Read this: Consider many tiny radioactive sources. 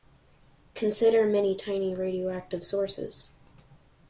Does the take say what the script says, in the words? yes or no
yes